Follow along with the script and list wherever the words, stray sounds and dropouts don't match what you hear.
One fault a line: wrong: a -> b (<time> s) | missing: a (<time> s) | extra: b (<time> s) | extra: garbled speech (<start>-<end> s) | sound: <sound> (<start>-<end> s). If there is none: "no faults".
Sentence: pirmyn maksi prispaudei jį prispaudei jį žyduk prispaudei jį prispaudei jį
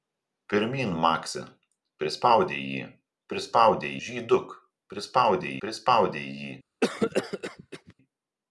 missing: jį (3.9 s)
missing: jį (5.6 s)
sound: cough (6.8-7.9 s)